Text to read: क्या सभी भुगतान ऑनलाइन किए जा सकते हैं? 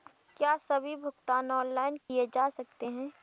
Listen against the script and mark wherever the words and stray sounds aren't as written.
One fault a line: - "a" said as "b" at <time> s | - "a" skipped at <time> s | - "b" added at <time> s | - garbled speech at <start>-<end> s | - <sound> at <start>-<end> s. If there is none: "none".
- dropout at 2.0-2.1 s